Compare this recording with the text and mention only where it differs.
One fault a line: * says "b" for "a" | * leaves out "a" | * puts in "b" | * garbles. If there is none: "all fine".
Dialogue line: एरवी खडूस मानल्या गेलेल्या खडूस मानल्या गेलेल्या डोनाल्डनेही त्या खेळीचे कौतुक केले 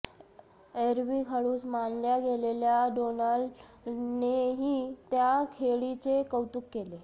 * leaves out "खडूस मानल्या गेलेल्या"